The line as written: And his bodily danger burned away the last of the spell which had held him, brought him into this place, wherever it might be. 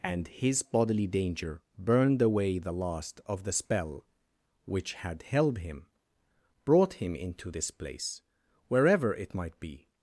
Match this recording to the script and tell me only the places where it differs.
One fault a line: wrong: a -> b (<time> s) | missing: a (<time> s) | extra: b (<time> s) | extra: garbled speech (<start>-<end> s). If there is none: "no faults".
no faults